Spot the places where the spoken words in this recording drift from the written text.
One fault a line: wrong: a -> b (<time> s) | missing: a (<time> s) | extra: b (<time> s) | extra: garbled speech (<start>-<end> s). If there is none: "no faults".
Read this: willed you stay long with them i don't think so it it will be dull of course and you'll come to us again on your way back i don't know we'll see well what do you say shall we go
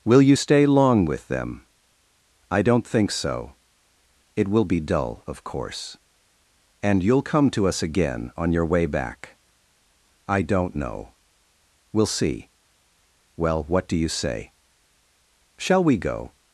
wrong: willed -> will (0.0 s)
missing: it (4.5 s)